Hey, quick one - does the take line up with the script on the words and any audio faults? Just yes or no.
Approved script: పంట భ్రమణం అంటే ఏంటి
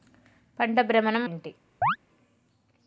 no